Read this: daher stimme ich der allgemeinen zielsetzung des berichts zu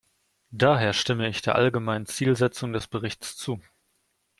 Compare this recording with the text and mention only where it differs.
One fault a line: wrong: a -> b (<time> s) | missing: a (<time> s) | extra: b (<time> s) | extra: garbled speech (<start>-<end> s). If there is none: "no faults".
no faults